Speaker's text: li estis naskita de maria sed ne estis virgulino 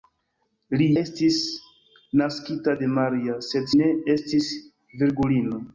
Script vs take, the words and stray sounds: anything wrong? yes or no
no